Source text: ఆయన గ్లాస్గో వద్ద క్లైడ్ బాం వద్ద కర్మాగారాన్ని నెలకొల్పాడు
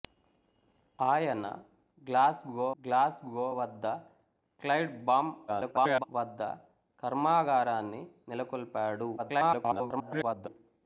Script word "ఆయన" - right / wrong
right